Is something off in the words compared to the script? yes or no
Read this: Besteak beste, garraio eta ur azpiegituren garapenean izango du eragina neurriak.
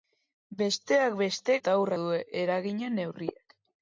yes